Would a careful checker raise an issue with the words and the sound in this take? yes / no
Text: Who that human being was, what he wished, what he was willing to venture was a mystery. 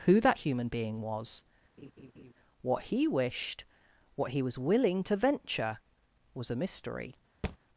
yes